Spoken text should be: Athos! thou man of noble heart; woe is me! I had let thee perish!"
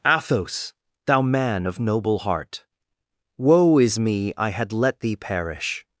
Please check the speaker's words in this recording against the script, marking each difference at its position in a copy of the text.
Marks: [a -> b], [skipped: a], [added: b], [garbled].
Athos! thou man of noble heart; woe is me! I had let thee perish!"